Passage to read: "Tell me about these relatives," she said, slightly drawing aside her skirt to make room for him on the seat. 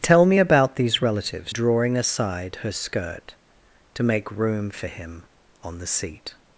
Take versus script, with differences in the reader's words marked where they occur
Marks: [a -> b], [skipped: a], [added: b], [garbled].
"Tell me about these relatives," [skipped: she said, slightly] drawing aside her skirt to make room for him on the seat.